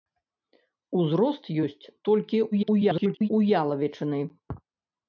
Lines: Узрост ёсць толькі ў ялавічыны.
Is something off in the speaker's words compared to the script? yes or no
yes